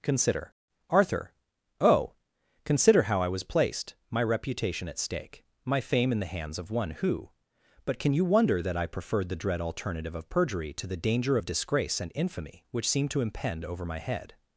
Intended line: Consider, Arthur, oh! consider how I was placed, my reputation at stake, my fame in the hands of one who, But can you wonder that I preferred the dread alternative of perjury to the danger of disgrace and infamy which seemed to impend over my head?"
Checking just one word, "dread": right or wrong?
right